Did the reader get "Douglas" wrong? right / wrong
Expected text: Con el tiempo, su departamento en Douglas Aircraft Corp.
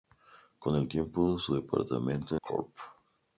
wrong